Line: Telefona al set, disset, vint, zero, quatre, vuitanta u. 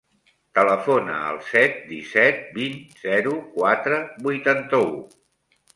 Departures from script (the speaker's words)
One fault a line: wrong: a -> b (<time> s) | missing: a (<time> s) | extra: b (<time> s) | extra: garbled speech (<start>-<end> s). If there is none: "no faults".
no faults